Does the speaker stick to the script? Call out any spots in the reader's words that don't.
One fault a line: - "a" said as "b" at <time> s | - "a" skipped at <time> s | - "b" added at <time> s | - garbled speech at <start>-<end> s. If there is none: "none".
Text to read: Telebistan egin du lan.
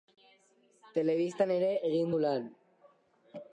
- "ere" added at 1.6 s